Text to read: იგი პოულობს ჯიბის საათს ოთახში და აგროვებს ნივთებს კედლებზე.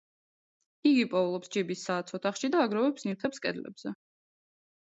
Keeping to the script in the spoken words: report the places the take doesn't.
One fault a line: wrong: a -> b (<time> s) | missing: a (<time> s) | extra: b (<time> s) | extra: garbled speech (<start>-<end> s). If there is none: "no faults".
no faults